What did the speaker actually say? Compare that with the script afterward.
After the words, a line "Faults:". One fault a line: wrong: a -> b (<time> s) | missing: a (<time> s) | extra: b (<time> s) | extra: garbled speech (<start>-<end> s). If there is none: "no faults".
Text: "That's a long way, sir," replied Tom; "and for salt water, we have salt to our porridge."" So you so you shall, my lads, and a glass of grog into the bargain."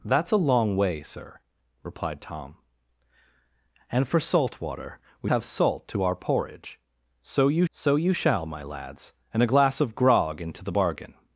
"That's a long way, sir," replied Tom; "and for salt water, we have salt to our porridge."" So you so you shall, my lads, and a glass of grog into the bargain."
Faults:
no faults